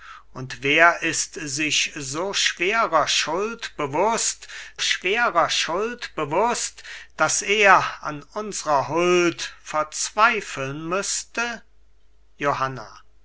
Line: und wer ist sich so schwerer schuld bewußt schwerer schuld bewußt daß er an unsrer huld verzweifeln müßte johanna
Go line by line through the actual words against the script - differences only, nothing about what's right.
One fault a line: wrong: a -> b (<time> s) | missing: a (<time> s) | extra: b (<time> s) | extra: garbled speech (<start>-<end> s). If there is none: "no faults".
no faults